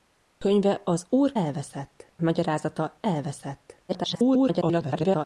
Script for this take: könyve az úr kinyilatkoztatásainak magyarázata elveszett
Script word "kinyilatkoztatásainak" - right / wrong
wrong